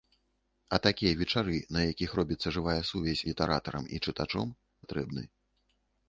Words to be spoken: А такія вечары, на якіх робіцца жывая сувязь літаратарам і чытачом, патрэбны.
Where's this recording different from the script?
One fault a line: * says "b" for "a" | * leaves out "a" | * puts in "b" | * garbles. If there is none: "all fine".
all fine